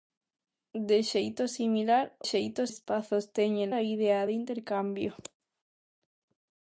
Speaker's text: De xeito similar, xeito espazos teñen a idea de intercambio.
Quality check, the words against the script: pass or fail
pass